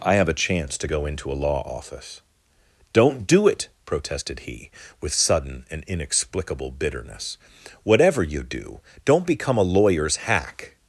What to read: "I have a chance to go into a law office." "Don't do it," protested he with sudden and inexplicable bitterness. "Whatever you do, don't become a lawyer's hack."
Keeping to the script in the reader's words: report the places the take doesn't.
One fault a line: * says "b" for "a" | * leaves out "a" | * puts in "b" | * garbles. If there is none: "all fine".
all fine